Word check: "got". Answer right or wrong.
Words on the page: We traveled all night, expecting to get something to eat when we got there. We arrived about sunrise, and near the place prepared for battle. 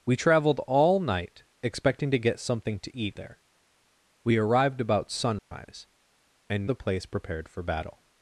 wrong